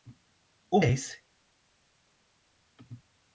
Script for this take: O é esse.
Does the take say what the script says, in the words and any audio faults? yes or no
yes